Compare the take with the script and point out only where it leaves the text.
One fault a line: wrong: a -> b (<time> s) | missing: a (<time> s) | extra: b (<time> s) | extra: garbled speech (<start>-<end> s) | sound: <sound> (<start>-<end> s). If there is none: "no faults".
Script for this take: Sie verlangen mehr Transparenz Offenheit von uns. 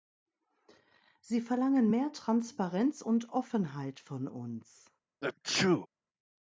extra: und (3.0 s)
sound: sneeze (5.2-5.9 s)